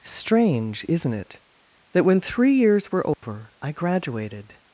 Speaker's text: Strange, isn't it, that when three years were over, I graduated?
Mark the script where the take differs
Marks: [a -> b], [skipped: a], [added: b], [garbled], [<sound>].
Strange, isn't it, that when three years were over, [dropout] I graduated?